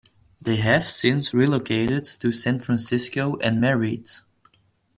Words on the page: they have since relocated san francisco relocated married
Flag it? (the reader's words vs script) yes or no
yes